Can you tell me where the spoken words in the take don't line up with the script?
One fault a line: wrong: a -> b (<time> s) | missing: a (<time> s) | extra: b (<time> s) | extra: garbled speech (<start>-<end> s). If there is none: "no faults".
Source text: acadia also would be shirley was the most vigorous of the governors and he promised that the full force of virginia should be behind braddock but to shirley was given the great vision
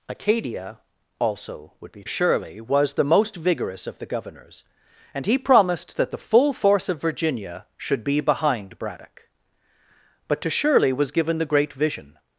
no faults